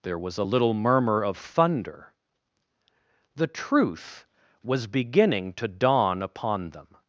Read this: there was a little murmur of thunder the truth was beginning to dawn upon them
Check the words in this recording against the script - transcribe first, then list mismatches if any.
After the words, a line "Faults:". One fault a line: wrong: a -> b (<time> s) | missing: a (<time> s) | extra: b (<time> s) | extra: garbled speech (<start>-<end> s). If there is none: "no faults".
there was a little murmur of thunder the truth was beginning to dawn upon them
Faults:
no faults